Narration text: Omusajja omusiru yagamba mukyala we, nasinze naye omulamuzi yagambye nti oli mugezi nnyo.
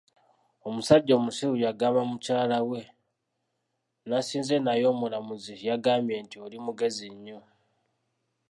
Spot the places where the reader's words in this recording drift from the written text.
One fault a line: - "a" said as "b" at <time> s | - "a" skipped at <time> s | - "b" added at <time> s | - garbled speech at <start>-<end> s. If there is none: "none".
none